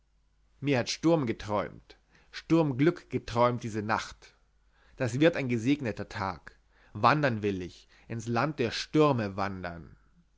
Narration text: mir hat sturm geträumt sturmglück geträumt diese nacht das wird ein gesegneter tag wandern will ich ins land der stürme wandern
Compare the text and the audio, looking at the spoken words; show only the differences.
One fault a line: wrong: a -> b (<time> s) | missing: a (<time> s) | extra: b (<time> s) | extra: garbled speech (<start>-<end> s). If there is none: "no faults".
no faults